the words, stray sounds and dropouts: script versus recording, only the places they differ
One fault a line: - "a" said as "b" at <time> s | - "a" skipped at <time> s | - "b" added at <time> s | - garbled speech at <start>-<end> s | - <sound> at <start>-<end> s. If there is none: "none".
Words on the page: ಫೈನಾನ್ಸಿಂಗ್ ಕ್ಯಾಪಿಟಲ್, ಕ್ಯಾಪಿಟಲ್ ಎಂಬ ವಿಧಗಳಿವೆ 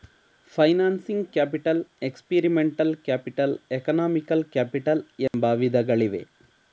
- "ಎಕ್ಸ್ಪೀರಿಮೆಂಟಲ್ ಕ್ಯಾಪಿಟಲ್ ಎಕನಾಮಿಕಲ್" added at 2.0 s
- dropout at 5.3-5.3 s